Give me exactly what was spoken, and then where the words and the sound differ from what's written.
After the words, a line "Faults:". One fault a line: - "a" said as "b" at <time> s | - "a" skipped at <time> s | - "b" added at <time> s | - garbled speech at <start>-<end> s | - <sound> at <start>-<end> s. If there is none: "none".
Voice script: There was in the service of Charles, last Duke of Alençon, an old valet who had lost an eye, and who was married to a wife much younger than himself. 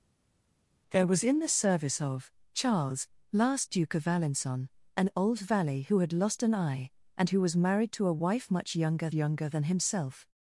There was in the service of Charles, last Duke of Alençon, an old valet who had lost an eye, and who was married to a wife much younger younger than himself.
Faults:
- "younger" added at 9.1 s